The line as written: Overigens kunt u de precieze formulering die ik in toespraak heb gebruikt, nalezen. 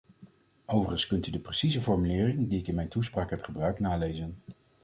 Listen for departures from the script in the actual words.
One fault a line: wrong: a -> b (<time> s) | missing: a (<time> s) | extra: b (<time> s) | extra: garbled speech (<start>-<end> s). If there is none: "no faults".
extra: mijn (2.8 s)